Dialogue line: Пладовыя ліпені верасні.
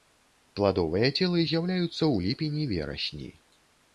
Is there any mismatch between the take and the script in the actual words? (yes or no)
yes